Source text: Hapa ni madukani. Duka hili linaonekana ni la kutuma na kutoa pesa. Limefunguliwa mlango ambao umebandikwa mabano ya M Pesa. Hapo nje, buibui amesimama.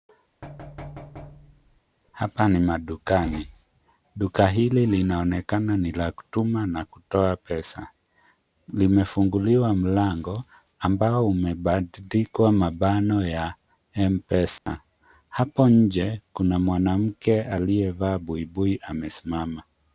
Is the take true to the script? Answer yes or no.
no